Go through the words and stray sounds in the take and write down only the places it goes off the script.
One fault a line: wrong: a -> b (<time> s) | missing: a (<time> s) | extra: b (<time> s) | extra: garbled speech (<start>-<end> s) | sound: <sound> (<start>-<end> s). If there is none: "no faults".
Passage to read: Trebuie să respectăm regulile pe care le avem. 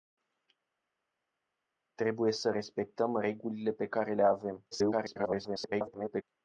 extra: garbled speech (4.7-6.2 s)